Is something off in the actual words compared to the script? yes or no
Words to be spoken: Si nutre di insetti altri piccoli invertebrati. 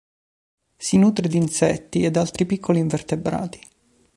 yes